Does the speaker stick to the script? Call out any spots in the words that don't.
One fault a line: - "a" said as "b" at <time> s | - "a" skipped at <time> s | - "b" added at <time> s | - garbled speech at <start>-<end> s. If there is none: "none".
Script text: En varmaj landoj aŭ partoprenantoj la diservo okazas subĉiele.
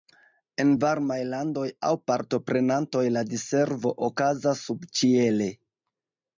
none